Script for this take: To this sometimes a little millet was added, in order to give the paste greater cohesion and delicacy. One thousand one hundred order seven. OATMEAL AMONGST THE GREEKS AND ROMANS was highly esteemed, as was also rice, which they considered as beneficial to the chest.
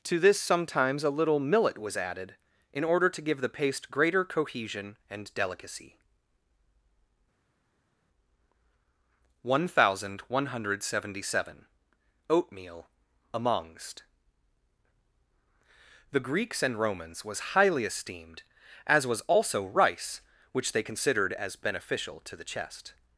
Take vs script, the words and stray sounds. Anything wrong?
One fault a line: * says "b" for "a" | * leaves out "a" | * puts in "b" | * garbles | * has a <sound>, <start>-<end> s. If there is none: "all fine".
* says "seventy" for "order"